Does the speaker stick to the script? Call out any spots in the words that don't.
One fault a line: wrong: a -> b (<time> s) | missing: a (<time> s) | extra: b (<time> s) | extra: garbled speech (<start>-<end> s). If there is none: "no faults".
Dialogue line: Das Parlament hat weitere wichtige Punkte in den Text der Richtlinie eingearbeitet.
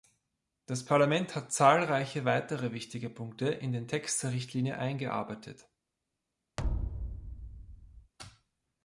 extra: zahlreiche (1.5 s)